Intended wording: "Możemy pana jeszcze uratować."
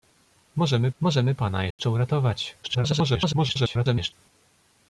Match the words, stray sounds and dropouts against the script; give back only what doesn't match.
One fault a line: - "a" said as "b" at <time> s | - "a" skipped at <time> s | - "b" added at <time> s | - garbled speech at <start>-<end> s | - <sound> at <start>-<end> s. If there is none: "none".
- "możemy" added at 1.0 s
- dropout at 1.7-1.8 s
- garbled speech at 2.6-4.1 s